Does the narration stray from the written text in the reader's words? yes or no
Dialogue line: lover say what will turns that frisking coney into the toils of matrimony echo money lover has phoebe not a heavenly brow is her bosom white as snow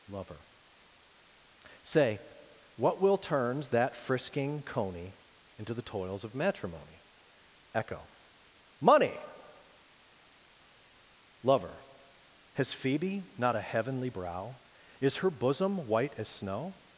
no